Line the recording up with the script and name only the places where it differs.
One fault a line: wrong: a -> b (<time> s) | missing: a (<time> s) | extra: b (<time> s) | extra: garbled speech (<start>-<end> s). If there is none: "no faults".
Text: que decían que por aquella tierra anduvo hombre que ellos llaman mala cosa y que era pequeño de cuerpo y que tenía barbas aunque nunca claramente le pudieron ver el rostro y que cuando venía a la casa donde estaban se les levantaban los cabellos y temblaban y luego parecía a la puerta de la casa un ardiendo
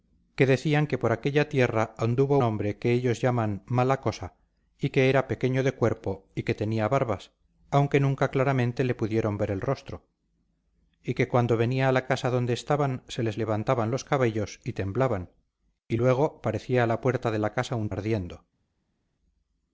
no faults